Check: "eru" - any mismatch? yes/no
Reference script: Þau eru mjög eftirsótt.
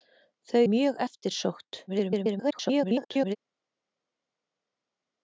yes